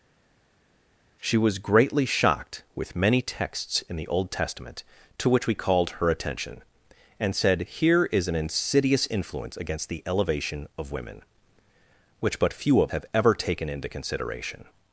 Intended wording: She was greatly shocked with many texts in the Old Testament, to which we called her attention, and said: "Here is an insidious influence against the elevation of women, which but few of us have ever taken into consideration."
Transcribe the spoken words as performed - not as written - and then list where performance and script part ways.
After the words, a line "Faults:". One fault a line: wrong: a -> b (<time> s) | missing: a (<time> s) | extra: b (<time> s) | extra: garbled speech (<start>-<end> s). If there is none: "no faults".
She was greatly shocked with many texts in the Old Testament, to which we called her attention, and said: "Here is an insidious influence against the elevation of women, which but few of have ever taken into consideration."
Faults:
missing: us (12.9 s)